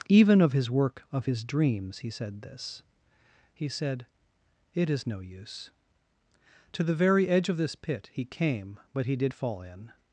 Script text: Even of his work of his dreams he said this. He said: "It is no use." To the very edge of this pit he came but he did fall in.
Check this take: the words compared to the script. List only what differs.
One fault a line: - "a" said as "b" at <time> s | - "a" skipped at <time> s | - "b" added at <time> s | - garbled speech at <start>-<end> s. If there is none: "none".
none